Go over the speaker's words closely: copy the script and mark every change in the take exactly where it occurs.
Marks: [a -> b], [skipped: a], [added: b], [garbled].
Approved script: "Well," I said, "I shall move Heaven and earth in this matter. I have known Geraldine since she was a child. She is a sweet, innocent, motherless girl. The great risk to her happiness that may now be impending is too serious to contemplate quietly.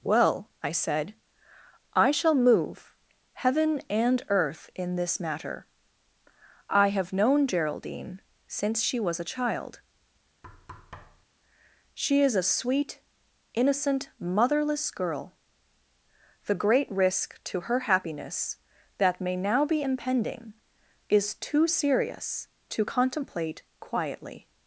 "Well," I said, "I shall move Heaven and earth in this matter. I have known Geraldine since she was a child. She is a sweet, innocent, motherless girl. The great risk to her happiness that may now be impending is too serious to contemplate quietly.